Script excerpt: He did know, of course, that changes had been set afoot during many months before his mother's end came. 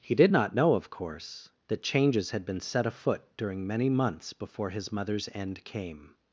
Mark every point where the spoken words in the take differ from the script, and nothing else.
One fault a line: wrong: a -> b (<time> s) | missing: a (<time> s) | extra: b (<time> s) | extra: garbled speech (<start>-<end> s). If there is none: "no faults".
extra: not (0.3 s)